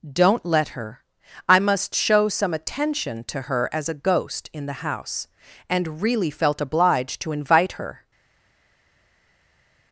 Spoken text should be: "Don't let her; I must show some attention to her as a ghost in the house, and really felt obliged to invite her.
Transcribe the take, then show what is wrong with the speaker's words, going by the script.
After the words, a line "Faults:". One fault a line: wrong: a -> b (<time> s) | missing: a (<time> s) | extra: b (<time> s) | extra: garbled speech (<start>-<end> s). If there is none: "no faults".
"Don't let her; I must show some attention to her as a ghost in the house, and really felt obliged to invite her.
Faults:
no faults